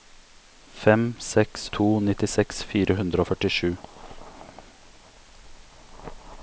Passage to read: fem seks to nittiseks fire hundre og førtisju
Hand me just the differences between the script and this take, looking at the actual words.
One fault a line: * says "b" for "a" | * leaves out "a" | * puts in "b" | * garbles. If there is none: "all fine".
all fine